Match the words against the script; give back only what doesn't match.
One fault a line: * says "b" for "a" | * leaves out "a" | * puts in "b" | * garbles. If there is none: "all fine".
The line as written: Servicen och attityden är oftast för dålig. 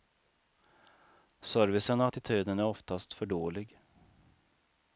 all fine